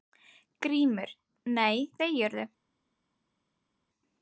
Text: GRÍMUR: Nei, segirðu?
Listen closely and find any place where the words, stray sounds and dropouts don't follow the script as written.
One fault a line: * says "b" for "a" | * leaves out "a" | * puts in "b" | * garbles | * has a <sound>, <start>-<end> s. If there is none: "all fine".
all fine